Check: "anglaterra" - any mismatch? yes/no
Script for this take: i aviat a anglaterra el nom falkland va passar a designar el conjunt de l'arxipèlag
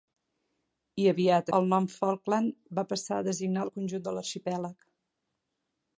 yes